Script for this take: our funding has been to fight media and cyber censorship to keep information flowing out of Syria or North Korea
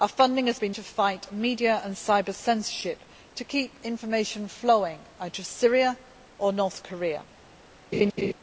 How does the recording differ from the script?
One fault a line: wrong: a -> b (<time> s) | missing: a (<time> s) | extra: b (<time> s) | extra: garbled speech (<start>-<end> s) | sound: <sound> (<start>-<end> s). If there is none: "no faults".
sound: laugh (7.9-8.3 s)